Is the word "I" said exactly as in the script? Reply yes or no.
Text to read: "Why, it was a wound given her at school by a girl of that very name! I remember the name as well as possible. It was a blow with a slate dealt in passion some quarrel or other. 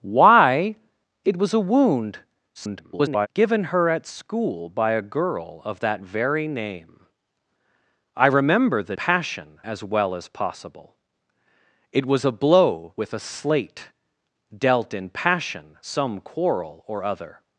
yes